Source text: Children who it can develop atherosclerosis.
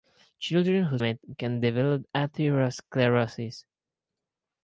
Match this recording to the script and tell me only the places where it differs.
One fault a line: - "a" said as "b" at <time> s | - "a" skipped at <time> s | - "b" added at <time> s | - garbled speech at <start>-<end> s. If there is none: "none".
none